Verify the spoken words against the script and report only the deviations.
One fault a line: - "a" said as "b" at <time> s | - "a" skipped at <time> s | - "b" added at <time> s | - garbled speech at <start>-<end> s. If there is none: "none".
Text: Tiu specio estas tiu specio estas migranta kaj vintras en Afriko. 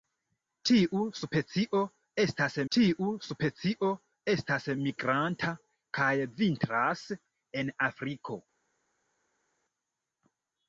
none